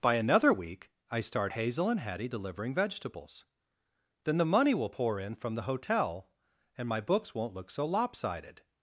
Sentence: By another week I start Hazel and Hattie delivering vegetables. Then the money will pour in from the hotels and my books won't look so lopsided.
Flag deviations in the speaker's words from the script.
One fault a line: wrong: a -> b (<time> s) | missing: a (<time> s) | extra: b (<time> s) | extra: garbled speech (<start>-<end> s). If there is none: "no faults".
wrong: hotels -> hotel (5.6 s)